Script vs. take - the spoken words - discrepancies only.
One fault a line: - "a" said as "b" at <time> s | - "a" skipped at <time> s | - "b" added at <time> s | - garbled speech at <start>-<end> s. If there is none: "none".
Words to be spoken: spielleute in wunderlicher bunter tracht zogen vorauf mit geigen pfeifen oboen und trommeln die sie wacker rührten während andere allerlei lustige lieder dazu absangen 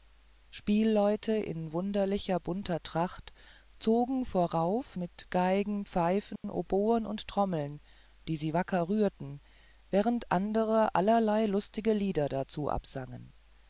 none